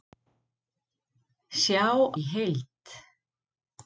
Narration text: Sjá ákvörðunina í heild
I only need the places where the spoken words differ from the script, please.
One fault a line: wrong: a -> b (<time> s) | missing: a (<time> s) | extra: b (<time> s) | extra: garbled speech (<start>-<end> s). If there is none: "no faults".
missing: ákvörðunina (1.9 s)